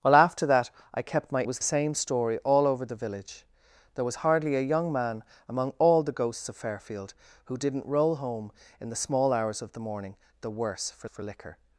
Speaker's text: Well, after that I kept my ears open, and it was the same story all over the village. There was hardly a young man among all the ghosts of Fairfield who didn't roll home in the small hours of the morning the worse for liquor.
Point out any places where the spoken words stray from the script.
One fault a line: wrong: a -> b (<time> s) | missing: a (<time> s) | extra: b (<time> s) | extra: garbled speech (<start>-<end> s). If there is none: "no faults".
missing: ears open and (1.4 s)
missing: the (1.6 s)
extra: for (11.0 s)